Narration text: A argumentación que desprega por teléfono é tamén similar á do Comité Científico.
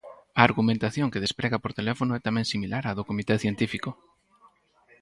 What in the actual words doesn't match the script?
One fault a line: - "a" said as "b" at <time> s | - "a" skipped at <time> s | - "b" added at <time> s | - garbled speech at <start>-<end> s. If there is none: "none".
none